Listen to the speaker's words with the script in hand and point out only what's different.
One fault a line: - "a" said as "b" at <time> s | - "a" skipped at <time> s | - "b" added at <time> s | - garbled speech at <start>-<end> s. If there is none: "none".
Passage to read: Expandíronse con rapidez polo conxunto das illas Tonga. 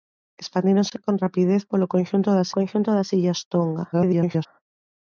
- "conxunto das" added at 2.6 s
- garbled speech at 3.9-4.5 s